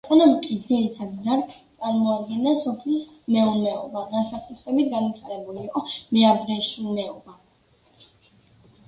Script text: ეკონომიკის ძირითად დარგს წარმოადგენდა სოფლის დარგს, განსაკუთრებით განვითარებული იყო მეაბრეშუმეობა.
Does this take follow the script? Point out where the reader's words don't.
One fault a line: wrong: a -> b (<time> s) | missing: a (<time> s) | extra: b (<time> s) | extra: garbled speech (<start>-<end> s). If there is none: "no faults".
wrong: დარგს -> მეურნეობა (3.4 s)